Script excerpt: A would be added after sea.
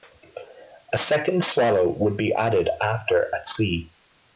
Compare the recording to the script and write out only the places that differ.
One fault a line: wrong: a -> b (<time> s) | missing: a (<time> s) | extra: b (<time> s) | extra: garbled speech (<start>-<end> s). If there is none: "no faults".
extra: second swallow (1.0 s)
extra: at (3.3 s)